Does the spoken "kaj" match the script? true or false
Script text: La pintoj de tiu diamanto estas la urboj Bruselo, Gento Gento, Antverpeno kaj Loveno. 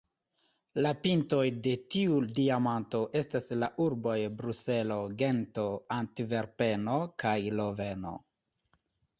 true